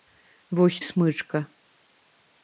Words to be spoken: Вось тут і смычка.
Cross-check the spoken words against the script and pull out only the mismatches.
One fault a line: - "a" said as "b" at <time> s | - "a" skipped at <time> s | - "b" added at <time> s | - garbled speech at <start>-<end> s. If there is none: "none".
- "тут" skipped at 0.8 s